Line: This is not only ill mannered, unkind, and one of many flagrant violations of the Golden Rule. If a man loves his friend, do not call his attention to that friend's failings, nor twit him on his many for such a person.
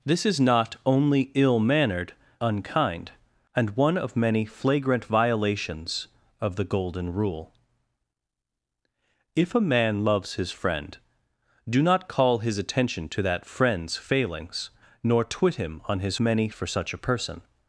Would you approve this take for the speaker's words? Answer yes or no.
yes